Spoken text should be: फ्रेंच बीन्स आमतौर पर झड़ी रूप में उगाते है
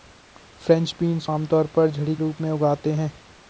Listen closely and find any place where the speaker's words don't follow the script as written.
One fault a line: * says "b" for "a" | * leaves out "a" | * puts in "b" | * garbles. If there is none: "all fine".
all fine